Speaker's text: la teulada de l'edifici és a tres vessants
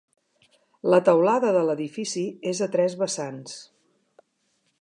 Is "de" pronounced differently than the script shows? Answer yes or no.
no